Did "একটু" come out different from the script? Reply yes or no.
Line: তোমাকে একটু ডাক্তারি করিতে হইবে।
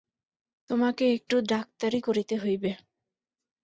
no